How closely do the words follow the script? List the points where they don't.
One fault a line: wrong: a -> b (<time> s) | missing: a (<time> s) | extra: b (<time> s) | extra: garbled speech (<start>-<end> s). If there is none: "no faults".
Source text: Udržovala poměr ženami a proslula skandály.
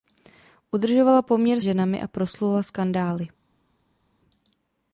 no faults